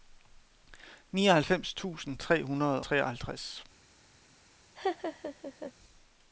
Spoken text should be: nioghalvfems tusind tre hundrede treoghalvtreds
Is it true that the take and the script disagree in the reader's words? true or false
false